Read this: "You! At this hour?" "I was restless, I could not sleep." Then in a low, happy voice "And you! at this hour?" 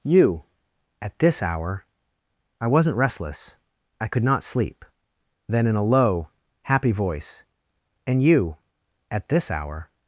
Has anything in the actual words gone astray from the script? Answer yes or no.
yes